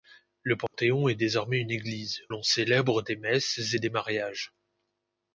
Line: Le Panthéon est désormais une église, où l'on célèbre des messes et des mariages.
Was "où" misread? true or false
true